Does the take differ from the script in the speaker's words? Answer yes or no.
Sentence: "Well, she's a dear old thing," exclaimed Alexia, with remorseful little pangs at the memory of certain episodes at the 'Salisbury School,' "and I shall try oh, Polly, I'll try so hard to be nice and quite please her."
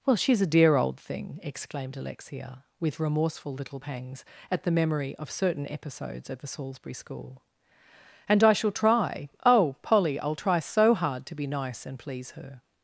yes